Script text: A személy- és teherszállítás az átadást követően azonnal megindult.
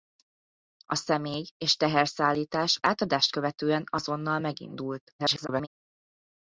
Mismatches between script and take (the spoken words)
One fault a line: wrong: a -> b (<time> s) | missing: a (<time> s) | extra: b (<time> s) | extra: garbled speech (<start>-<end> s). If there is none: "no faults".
missing: az (2.8 s)
extra: garbled speech (5.2-5.7 s)